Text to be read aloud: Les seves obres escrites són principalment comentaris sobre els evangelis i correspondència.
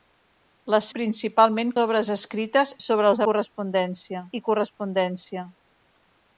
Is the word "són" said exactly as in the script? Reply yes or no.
no